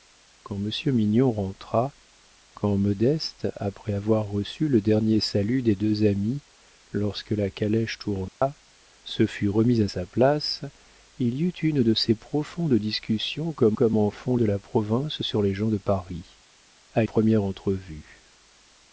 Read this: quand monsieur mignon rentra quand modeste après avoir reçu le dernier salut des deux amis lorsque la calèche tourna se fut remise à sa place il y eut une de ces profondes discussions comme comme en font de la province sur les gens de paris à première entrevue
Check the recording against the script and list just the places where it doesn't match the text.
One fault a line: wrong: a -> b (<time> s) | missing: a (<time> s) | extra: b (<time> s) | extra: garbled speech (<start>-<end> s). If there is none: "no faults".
no faults